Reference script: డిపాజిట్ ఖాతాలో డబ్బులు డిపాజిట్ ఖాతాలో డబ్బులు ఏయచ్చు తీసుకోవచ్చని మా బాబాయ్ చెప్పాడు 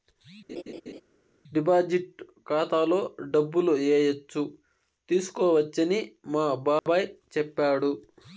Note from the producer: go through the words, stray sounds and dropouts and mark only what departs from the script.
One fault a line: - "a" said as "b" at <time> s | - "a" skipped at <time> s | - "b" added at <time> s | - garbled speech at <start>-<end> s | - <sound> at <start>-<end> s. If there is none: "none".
- laugh at 0.5-1.0 s
- "డిపాజిట్ ఖాతాలో డబ్బులు" skipped at 3.7 s
- dropout at 6.8-6.9 s